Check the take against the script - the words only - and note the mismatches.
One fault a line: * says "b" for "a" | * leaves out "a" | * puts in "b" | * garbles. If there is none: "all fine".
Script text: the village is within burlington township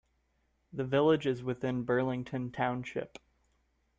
all fine